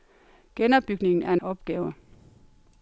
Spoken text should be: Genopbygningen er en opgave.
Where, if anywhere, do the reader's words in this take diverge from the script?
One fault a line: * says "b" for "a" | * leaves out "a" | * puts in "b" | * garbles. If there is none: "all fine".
all fine